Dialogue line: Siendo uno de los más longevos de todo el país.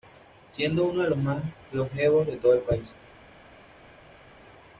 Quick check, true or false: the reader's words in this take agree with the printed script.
true